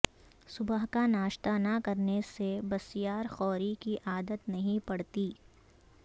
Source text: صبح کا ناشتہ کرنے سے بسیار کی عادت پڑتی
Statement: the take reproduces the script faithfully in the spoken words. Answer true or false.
false